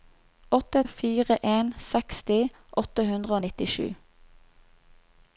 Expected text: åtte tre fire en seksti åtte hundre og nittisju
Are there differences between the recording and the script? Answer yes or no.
yes